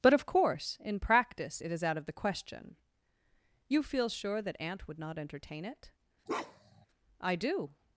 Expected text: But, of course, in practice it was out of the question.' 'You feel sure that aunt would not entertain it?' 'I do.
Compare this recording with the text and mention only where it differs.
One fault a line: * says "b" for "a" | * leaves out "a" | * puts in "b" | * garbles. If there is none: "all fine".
* says "is" for "was"